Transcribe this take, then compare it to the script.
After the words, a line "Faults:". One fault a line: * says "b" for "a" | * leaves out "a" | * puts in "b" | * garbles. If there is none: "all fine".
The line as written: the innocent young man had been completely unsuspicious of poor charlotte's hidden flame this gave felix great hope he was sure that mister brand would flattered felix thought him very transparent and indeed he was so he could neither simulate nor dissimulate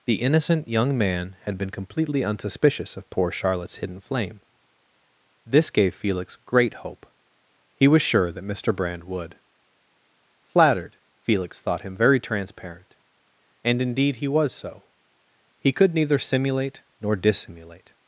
the innocent young man had been completely unsuspicious of poor charlotte's hidden flame this gave felix great hope he was sure that mister brand would flattered felix thought him very transparent and indeed he was so he could neither simulate nor dissimulate
Faults:
all fine